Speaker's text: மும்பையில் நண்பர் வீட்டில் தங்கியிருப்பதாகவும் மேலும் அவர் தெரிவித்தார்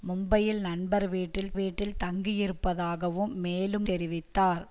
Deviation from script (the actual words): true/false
true